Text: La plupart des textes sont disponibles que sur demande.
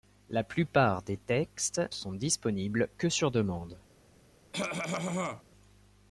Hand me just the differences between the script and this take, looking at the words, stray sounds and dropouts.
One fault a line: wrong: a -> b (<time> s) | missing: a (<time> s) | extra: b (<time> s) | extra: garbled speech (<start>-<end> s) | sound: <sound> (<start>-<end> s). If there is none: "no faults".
sound: cough (4.5-5.4 s)